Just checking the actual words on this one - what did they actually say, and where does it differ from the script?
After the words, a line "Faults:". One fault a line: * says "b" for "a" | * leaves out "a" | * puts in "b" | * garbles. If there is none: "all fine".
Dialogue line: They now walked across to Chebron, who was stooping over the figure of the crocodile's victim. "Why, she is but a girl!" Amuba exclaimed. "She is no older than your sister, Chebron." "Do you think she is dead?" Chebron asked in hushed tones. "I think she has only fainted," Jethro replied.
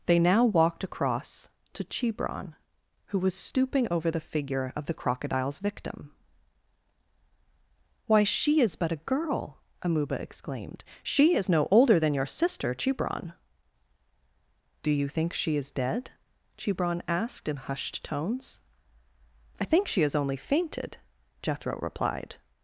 They now walked across to Chebron, who was stooping over the figure of the crocodile's victim. "Why, she is but a girl!" Amuba exclaimed. "She is no older than your sister, Chebron." "Do you think she is dead?" Chebron asked in hushed tones. "I think she has only fainted," Jethro replied.
Faults:
all fine